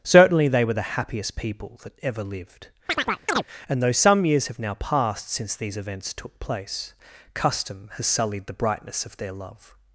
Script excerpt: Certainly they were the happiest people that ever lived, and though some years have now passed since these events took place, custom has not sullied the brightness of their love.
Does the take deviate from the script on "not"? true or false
true